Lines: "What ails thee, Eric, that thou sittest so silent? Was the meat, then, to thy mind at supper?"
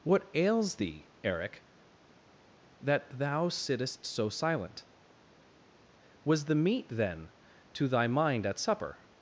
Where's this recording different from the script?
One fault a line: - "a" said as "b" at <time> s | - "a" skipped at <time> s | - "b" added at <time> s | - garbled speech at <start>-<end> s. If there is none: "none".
none